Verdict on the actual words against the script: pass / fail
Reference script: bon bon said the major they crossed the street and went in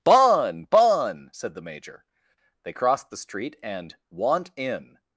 fail